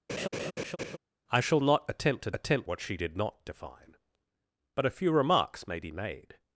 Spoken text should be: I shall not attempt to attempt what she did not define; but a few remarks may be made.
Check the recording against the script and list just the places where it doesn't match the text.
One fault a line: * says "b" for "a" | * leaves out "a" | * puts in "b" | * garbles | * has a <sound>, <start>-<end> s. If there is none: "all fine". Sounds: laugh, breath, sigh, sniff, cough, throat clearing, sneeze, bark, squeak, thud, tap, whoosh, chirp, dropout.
* has a laugh, 0.1-1.0 s